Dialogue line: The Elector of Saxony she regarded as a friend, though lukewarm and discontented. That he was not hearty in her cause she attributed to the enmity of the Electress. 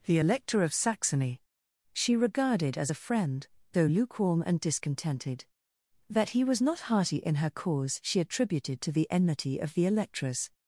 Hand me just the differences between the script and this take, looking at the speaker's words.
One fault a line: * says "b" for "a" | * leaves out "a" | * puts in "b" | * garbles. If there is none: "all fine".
all fine